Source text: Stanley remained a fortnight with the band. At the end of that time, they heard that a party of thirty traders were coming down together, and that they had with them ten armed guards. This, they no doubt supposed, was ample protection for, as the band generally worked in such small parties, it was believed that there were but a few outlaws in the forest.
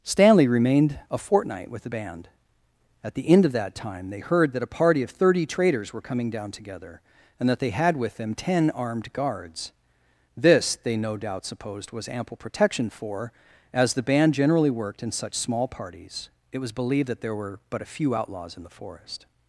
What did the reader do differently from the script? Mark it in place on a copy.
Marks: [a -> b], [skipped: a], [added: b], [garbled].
Stanley remained a fortnight with the band. At the end of that time, they heard that a party of thirty traders were coming down together, and that they had with them ten armed guards. This, they no doubt supposed, was ample protection for, as the band generally worked in such small parties, it was believed that there were but a few outlaws in the forest.